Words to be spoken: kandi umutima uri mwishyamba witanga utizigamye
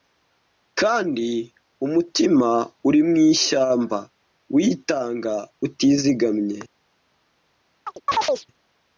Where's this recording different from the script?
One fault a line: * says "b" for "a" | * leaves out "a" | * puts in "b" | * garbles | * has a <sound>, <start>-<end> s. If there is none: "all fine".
* has a chirp, 7.9-8.5 s